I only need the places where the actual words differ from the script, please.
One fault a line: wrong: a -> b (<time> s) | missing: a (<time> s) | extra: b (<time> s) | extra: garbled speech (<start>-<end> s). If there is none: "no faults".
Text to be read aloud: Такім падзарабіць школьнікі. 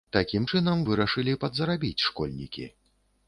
extra: чынам вырашылі (0.5 s)